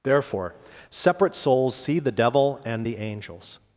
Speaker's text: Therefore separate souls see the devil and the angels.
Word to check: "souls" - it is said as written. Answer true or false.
true